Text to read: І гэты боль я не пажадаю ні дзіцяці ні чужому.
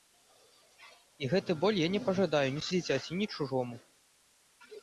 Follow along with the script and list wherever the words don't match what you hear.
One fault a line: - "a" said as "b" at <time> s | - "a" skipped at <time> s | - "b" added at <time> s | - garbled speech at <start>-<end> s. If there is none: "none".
none